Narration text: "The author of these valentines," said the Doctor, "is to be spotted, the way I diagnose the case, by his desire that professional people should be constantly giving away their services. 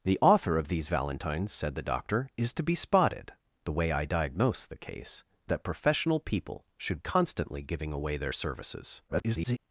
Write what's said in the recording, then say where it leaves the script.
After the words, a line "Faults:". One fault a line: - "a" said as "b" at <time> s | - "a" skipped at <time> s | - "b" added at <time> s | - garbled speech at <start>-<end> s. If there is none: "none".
"The author of these valentines," said the Doctor, "is to be spotted, the way I diagnose the case, that professional people should constantly giving away their services. [garbled]
Faults:
- "by his desire" skipped at 5.2 s
- "be" skipped at 7.0 s
- garbled speech at 9.1-9.6 s